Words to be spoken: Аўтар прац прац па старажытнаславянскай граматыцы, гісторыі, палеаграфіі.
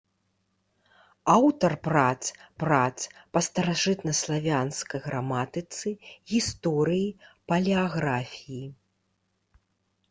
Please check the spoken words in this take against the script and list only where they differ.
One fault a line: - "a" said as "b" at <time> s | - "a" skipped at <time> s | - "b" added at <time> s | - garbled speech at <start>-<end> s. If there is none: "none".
none